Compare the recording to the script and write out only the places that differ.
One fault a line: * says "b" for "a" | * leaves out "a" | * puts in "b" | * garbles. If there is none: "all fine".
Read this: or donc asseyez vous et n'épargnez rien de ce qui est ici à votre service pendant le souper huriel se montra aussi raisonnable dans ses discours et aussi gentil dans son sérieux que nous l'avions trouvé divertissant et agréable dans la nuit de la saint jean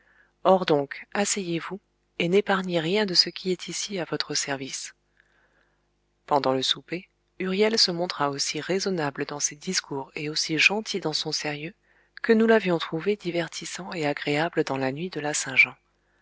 all fine